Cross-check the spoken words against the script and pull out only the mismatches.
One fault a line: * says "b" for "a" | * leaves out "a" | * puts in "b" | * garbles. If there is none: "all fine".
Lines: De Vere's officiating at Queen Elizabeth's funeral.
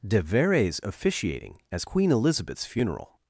* says "as" for "at"